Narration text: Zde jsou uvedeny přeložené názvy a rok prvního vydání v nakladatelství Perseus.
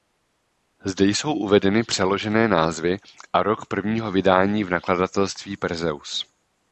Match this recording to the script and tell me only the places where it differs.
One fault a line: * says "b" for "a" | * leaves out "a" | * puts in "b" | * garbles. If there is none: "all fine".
all fine